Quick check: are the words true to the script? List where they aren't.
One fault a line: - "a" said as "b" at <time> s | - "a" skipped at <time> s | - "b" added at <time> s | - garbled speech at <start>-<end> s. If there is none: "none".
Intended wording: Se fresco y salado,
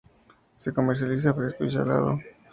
- "comercializa" added at 0.7 s